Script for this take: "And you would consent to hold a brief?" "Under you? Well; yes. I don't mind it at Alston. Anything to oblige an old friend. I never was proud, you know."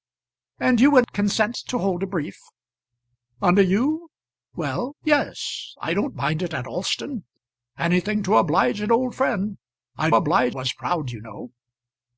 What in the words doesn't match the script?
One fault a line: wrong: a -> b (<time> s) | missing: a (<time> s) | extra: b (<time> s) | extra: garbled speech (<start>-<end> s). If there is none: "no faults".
wrong: never -> oblige (10.1 s)